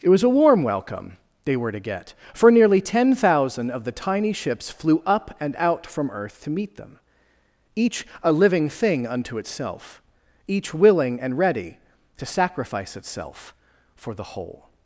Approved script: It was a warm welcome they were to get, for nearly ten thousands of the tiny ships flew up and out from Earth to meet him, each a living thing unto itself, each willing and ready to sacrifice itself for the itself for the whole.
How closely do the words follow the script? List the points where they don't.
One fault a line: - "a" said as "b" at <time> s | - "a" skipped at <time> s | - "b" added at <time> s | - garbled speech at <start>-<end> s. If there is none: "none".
- "thousands" said as "thousand" at 3.1 s
- "him" said as "them" at 6.8 s
- "itself for the" skipped at 14.3 s